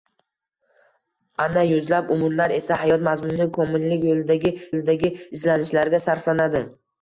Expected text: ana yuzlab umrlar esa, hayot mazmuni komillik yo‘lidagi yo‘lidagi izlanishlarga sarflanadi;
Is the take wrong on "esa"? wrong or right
right